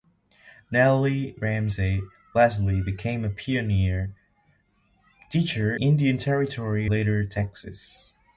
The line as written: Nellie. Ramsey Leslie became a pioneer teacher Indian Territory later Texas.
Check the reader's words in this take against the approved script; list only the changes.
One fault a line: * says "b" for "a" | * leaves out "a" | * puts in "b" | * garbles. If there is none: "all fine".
all fine